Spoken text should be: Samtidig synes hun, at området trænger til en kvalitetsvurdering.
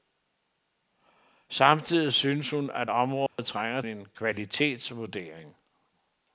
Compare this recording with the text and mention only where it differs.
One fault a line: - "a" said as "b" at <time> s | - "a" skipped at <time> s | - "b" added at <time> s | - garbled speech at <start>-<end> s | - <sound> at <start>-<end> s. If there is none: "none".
- dropout at 3.3-3.4 s
- "til" skipped at 3.8 s